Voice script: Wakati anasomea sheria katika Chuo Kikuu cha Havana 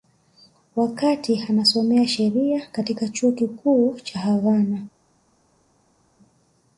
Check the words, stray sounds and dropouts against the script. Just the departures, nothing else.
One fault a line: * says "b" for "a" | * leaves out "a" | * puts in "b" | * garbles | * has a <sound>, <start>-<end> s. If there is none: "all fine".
all fine